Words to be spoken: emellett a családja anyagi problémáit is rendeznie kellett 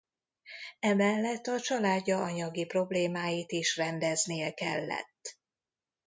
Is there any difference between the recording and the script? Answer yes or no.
no